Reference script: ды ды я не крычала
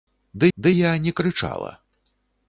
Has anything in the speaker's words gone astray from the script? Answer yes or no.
no